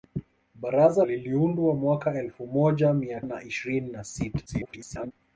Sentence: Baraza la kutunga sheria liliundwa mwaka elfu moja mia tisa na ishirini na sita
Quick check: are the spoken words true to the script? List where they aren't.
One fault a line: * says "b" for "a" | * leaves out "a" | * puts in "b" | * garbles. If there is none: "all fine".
* leaves out "la kutunga sheria"
* leaves out "tisa"
* garbles